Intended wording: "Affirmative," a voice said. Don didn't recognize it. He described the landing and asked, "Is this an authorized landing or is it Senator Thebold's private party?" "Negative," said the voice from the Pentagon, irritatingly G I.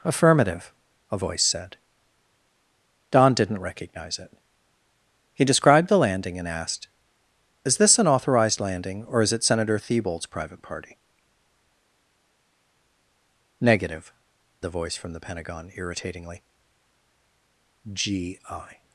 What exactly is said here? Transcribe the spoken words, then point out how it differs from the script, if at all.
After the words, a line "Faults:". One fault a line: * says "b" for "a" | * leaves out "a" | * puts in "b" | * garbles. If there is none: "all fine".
"Affirmative," a voice said. Don didn't recognize it. He described the landing and asked, "Is this an authorized landing or is it Senator Thebold's private party?" "Negative," the voice from the Pentagon, irritatingly G I.
Faults:
* leaves out "said"